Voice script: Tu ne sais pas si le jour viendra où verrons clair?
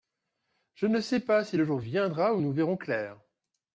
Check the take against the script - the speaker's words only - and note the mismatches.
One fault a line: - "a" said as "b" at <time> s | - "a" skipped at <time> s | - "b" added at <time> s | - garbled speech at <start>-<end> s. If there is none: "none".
- "Tu" said as "Je" at 0.7 s
- "nous" added at 2.4 s